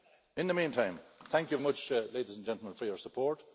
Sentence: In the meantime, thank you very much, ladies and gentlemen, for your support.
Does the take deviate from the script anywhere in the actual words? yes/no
yes